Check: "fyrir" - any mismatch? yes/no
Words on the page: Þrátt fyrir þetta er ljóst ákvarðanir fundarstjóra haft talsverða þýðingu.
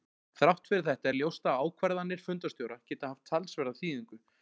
no